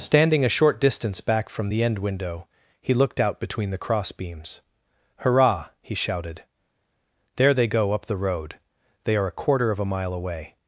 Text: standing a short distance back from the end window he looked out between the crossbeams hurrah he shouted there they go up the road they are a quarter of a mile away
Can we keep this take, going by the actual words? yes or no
yes